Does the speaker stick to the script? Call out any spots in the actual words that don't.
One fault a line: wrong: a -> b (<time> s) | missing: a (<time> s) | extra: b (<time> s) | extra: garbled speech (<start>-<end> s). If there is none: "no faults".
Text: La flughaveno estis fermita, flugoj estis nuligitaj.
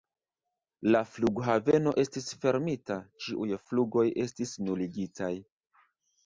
extra: ĉiuj (3.2 s)